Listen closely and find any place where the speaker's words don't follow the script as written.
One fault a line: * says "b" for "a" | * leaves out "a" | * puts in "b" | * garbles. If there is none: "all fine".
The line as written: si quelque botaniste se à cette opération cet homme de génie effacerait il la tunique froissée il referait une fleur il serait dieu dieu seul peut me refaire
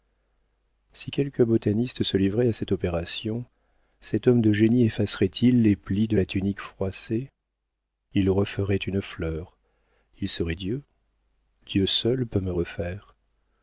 * puts in "livrait"
* puts in "les plis de"